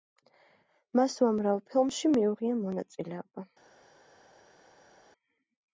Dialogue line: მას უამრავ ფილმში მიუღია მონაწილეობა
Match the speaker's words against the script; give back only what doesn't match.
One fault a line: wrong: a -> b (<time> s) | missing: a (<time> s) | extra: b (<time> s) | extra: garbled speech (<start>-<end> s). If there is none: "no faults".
no faults